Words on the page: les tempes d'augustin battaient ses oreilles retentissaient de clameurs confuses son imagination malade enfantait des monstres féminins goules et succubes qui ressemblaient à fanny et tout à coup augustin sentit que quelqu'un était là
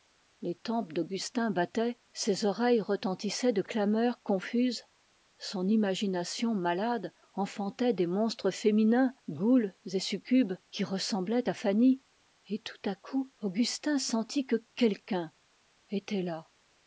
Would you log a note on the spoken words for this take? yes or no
no